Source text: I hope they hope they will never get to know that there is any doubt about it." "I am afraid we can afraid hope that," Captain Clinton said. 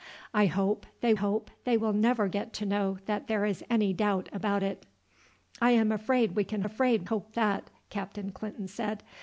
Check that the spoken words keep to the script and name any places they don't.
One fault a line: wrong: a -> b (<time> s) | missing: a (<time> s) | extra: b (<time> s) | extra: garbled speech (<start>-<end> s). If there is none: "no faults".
no faults